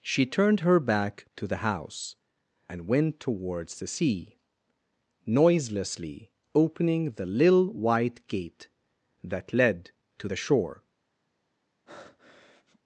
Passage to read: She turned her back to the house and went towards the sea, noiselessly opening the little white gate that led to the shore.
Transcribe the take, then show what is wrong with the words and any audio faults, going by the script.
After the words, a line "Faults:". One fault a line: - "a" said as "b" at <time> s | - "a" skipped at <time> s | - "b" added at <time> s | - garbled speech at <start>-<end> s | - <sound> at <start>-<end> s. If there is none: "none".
She turned her back to the house and went towards the sea, noiselessly opening the little white gate that led to the shore.
Faults:
- breath at 11.9-12.8 s